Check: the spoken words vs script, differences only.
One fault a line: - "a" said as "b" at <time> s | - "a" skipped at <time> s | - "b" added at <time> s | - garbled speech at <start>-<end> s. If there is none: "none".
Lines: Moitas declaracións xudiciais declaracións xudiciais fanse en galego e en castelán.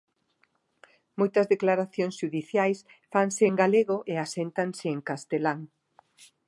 - "declaracións xudiciais" skipped at 2.8 s
- "aséntanse" added at 4.2 s